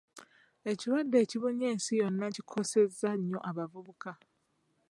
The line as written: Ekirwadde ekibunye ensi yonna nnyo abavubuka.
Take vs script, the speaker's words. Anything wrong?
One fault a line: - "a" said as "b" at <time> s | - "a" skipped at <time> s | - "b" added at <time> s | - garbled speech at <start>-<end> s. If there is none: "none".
- "kikosezza" added at 2.3 s